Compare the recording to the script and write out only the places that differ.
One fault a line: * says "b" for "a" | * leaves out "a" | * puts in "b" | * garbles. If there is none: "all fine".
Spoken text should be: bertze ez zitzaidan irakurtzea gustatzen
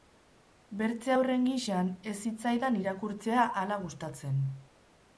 * puts in "haurren gisan"
* puts in "hala"